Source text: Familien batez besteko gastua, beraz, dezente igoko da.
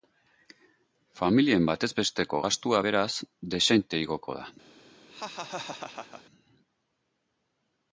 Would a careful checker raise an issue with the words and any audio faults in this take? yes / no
yes